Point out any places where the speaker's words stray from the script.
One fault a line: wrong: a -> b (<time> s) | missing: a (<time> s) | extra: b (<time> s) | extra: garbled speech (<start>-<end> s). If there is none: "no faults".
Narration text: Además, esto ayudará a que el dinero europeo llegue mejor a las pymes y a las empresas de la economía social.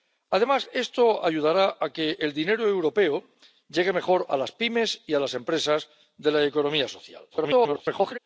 extra: garbled speech (7.3-8.2 s)